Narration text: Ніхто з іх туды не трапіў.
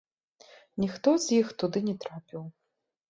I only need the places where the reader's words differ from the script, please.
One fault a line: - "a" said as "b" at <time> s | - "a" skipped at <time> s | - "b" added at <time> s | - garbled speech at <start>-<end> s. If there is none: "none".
none